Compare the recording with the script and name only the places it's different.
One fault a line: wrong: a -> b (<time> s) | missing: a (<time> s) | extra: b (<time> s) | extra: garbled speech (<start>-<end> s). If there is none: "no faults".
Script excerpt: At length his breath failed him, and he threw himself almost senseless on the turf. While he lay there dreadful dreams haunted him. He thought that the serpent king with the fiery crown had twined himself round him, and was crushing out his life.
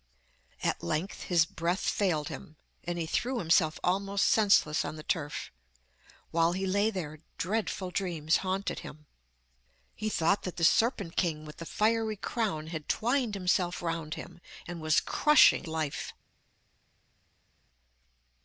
missing: out his (15.7 s)